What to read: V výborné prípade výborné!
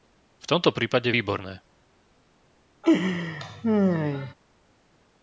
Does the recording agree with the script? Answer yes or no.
no